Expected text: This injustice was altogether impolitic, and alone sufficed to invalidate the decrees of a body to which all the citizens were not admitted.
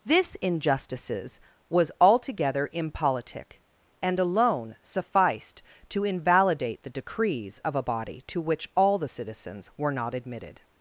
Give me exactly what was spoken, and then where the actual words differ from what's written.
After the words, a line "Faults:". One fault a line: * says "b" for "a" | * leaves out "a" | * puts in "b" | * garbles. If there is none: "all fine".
This injustices was altogether impolitic, and alone sufficed to invalidate the decrees of a body to which all the citizens were not admitted.
Faults:
* says "injustices" for "injustice"